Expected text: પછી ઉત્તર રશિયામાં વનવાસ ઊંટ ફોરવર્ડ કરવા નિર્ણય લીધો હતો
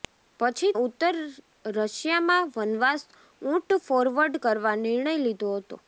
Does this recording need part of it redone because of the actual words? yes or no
no